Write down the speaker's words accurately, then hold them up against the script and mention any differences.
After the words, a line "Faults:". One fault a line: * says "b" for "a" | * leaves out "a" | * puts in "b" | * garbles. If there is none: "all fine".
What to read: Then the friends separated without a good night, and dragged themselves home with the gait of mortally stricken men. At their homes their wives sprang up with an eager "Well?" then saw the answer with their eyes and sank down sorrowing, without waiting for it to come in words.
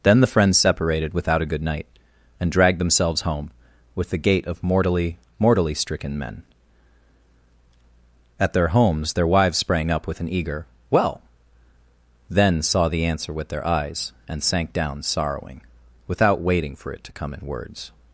Then the friends separated without a good night, and dragged themselves home with the gait of mortally mortally stricken men. At their homes their wives sprang up with an eager "Well?" then saw the answer with their eyes and sank down sorrowing, without waiting for it to come in words.
Faults:
* puts in "mortally"